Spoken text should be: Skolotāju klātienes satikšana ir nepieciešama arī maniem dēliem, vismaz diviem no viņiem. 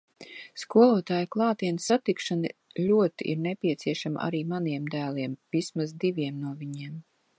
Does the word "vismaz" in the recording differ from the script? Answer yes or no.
no